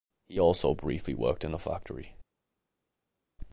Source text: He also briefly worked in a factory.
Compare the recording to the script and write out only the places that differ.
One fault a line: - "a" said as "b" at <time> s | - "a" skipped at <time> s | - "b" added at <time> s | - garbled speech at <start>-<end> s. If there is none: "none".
none